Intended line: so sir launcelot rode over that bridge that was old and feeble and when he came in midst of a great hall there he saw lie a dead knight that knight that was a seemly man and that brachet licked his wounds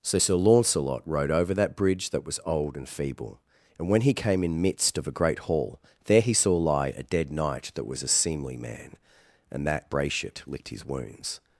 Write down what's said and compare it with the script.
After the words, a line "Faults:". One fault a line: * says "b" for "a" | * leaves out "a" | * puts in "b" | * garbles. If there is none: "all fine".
so sir launcelot rode over that bridge that was old and feeble and when he came in midst of a great hall there he saw lie a dead knight that was a seemly man and that brachet licked his wounds
Faults:
* leaves out "knight that"